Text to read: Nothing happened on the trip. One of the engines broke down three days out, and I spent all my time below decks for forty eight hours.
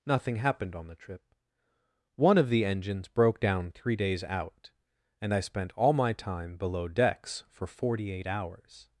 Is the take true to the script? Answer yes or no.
yes